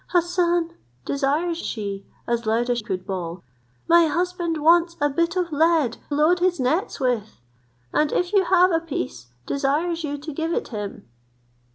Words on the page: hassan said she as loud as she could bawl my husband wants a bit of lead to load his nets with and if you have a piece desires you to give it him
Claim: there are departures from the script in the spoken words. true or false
true